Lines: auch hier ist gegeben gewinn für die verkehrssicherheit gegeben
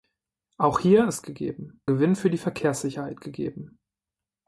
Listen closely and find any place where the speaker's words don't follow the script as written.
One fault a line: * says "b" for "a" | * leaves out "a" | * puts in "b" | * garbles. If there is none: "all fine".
all fine